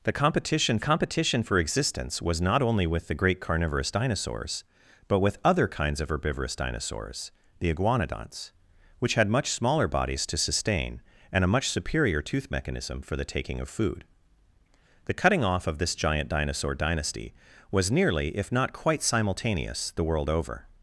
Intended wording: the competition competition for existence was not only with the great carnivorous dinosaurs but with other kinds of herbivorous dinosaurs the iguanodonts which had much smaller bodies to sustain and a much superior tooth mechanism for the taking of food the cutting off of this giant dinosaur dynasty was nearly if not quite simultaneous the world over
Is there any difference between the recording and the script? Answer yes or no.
no